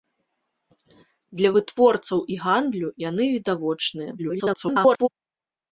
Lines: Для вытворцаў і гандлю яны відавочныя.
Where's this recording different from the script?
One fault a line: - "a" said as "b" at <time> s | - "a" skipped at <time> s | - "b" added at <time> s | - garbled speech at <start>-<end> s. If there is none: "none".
- garbled speech at 4.2-5.1 s